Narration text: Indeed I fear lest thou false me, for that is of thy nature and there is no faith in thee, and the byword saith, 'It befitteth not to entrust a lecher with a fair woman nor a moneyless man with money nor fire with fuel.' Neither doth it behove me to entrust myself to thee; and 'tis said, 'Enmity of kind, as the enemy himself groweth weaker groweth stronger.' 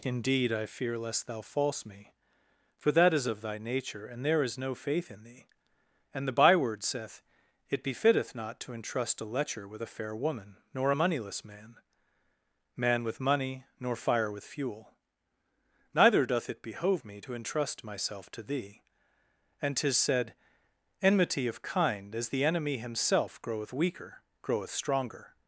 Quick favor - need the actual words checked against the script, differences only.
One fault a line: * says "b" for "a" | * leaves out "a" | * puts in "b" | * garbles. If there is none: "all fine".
* puts in "man"